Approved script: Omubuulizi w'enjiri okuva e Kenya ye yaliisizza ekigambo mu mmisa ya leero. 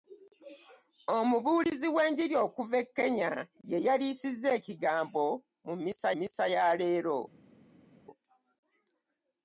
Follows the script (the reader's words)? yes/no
no